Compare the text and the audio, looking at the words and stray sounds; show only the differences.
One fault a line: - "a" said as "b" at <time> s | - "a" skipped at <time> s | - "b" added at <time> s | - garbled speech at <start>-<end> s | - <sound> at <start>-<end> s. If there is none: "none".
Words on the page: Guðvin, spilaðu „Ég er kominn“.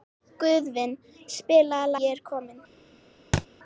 - thud at 3.3-3.5 s